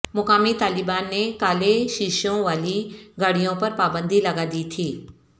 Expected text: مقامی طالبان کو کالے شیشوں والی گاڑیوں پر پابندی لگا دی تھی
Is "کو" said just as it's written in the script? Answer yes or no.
no